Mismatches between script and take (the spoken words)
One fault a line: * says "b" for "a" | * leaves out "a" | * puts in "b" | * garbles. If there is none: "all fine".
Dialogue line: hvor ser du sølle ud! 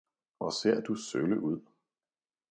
all fine